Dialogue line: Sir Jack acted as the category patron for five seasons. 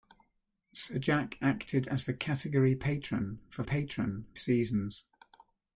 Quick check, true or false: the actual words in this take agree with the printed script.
false